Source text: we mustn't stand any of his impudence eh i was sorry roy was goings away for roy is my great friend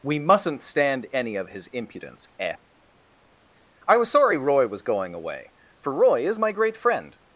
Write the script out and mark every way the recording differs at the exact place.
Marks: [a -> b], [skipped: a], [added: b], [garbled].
we mustn't stand any of his impudence eh i was sorry roy was [goings -> going] away for roy is my great friend